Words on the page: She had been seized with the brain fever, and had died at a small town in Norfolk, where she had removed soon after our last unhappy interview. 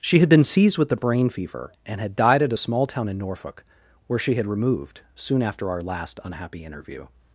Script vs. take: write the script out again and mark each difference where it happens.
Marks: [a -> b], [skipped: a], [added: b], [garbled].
She had been seized with the brain fever, and had died at a small town in Norfolk, where she had removed soon after our last unhappy interview.